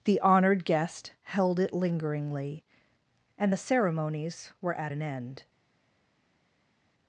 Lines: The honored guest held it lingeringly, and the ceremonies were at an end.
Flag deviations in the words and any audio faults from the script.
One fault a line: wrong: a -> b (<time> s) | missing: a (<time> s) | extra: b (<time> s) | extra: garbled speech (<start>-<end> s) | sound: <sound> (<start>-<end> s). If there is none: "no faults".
no faults